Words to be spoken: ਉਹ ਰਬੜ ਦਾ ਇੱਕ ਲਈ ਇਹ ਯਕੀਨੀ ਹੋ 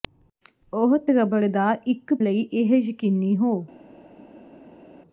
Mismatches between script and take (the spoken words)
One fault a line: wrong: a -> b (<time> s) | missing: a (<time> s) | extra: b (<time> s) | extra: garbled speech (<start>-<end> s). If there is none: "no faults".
no faults